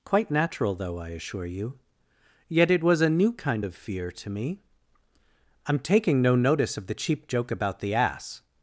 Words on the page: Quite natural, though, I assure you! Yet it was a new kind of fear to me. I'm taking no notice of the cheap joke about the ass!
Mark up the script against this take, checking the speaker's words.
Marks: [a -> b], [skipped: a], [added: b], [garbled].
Quite natural, though, I assure you! Yet it was a new kind of fear to me. I'm taking no notice of the cheap joke about the ass!